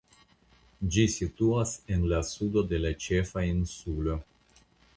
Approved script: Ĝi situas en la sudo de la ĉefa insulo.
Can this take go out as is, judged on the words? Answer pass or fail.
pass